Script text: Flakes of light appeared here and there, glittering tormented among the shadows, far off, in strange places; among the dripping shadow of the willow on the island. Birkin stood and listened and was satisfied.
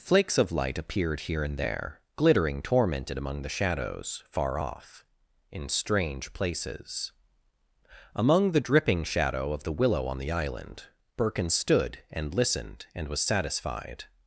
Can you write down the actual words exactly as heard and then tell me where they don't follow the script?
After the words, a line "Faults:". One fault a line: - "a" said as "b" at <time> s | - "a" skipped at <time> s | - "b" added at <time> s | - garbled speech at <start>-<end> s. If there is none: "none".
Flakes of light appeared here and there, glittering tormented among the shadows, far off, in strange places; among the dripping shadow of the willow on the island. Birkin stood and listened and was satisfied.
Faults:
none